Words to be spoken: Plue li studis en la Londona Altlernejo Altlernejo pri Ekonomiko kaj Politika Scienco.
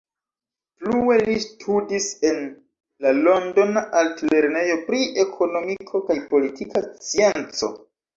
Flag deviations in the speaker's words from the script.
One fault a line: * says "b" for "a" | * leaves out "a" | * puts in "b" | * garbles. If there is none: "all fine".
* leaves out "Altlernejo"